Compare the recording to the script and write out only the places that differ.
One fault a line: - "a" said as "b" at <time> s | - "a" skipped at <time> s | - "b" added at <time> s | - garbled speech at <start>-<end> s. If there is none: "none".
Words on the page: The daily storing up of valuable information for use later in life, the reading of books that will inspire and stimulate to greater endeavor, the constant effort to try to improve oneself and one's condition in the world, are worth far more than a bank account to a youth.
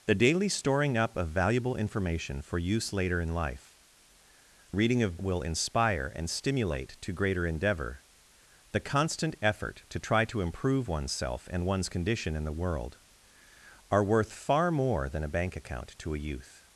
- "the" skipped at 3.8 s
- "books that" skipped at 5.2 s